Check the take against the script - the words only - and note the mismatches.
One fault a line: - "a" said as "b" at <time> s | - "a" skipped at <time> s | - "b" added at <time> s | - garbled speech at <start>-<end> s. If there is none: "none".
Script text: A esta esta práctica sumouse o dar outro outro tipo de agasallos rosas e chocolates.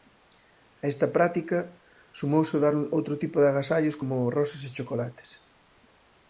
- "esta" skipped at 1.1 s
- "outro" skipped at 3.1 s
- "como" added at 4.0 s